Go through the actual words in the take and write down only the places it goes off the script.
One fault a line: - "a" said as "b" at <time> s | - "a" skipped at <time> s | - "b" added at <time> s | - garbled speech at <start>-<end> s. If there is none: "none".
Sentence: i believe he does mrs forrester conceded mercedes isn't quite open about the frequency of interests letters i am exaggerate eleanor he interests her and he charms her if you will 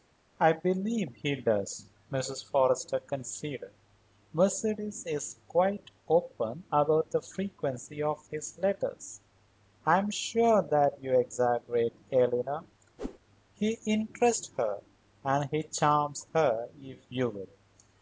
- "isn't" said as "is" at 5.0 s
- "interests" said as "his" at 8.3 s
- "sure that you" added at 10.1 s